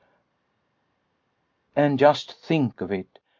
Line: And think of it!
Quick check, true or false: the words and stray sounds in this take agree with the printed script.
false